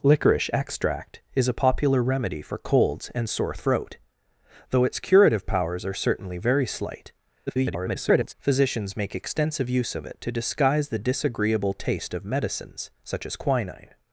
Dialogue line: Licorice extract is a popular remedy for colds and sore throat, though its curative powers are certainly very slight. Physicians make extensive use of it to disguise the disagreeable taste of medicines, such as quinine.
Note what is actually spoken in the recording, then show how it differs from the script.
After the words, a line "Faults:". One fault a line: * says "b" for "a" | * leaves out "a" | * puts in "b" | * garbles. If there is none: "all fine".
Licorice extract is a popular remedy for colds and sore throat, though its curative powers are certainly very slight. [garbled] Physicians make extensive use of it to disguise the disagreeable taste of medicines, such as quinine.
Faults:
* garbles